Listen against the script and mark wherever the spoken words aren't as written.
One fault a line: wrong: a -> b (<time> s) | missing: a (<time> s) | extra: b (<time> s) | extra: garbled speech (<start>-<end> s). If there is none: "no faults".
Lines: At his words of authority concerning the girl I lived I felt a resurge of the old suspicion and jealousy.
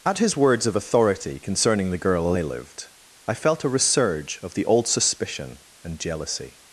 no faults